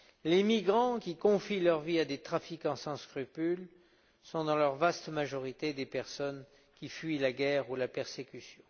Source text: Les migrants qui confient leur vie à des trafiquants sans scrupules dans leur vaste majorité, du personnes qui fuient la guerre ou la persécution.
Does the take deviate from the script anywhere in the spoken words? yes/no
yes